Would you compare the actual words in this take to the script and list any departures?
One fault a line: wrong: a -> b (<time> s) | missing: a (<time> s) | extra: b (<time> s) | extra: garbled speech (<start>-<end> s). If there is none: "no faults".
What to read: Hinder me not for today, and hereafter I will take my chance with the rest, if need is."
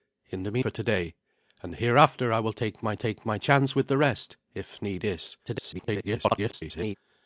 missing: not (0.6 s)
extra: take my (2.9 s)
extra: garbled speech (5.5-7.0 s)